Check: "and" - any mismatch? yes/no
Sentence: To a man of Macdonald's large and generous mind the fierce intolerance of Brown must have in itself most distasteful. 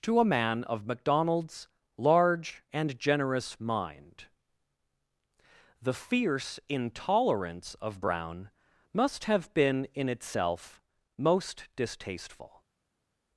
no